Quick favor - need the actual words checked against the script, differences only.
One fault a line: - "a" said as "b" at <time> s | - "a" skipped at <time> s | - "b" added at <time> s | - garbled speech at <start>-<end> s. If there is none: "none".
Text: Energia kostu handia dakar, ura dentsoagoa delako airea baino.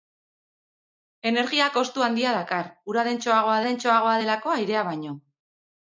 - "dentsoagoa" added at 3.7 s